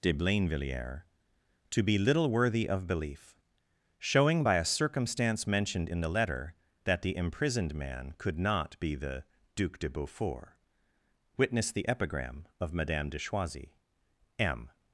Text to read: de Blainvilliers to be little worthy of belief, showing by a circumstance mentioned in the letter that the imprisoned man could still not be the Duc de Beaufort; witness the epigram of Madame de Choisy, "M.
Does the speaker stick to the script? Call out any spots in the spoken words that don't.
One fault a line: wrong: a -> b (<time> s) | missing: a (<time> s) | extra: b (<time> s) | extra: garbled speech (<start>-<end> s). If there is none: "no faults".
missing: still (8.4 s)